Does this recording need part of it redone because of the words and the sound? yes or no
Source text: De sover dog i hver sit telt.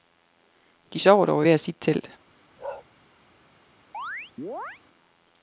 yes